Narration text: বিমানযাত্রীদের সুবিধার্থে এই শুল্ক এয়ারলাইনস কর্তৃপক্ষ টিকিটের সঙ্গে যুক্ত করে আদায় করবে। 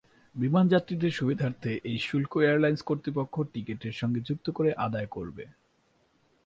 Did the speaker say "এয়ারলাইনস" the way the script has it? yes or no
yes